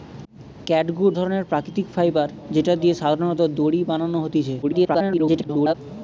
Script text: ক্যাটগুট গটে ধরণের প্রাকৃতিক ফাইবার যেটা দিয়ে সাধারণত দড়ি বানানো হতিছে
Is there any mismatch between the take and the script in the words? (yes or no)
yes